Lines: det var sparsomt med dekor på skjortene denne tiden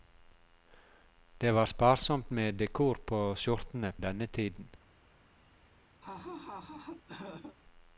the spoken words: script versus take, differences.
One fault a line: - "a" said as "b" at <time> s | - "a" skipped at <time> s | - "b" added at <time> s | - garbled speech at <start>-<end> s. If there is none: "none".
none